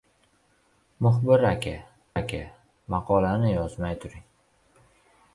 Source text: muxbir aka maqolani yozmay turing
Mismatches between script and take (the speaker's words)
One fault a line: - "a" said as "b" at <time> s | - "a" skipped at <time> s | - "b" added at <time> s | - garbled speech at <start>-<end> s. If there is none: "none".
- "aka" added at 2.2 s